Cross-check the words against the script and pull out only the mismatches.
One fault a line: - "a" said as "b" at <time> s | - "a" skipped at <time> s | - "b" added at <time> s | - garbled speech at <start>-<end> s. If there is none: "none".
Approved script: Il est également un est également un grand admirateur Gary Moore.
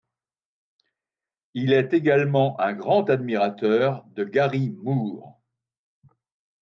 - "est également un" skipped at 2.7 s
- "de" added at 4.0 s